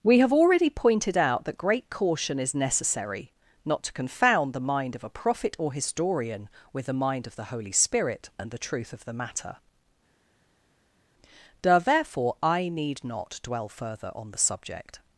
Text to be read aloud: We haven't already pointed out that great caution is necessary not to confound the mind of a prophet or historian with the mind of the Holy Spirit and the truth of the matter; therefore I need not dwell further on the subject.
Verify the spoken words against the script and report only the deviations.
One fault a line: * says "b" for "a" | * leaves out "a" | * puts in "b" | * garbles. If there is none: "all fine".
* says "have" for "haven't"